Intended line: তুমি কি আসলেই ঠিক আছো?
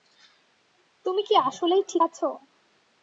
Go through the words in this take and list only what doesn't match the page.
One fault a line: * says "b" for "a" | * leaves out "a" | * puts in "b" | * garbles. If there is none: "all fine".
all fine